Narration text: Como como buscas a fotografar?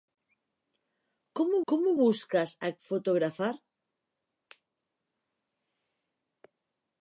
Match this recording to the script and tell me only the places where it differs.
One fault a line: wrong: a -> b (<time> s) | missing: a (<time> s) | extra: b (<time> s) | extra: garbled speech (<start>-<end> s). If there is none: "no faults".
no faults